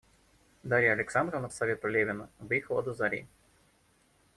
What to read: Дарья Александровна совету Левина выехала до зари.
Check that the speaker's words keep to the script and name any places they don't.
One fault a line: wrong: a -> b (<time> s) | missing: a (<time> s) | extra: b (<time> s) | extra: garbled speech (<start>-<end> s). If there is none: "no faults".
no faults